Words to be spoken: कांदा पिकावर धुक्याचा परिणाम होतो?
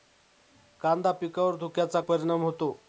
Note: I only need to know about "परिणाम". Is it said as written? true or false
true